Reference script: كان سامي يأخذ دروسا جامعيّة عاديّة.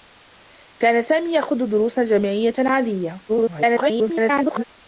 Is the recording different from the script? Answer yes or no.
yes